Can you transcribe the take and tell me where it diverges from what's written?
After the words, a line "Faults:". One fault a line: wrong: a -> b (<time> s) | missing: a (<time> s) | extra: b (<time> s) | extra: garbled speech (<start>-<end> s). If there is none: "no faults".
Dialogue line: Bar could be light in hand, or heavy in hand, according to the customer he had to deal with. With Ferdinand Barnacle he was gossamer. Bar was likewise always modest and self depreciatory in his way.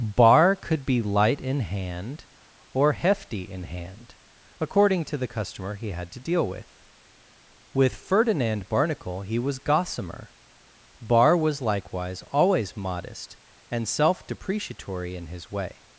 Bar could be light in hand, or hefty in hand, according to the customer he had to deal with. With Ferdinand Barnacle he was gossamer. Bar was likewise always modest and self depreciatory in his way.
Faults:
wrong: heavy -> hefty (2.9 s)